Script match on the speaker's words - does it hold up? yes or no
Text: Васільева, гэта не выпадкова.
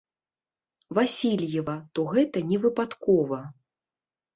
no